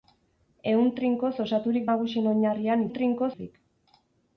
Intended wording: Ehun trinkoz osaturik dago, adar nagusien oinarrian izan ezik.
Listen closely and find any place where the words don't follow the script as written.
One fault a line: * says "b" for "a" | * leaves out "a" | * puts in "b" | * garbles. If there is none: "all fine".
* leaves out "dago adar"
* says "trinkoz" for "izan"